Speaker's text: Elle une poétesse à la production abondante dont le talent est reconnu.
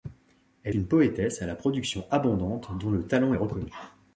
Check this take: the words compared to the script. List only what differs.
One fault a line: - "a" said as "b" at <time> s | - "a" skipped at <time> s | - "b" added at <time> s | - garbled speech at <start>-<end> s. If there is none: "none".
none